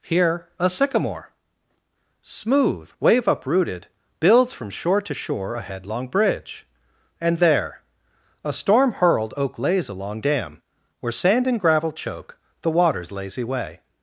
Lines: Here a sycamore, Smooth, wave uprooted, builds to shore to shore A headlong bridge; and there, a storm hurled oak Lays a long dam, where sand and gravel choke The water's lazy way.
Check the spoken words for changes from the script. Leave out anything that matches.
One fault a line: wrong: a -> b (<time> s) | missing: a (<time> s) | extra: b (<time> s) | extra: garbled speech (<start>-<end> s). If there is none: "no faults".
wrong: to -> from (4.5 s)